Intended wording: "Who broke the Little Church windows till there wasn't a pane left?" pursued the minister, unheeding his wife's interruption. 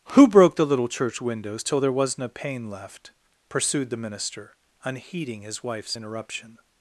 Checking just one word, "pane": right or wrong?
right